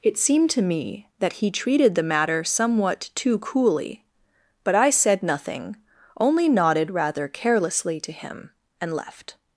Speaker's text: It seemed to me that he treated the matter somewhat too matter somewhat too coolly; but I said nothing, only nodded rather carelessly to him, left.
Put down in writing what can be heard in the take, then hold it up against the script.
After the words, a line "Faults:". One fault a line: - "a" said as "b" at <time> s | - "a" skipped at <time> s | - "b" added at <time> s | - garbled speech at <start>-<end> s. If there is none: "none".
It seemed to me that he treated the matter somewhat too coolly; but I said nothing, only nodded rather carelessly to him, and left.
Faults:
- "matter somewhat too" skipped at 3.4 s
- "and" added at 8.8 s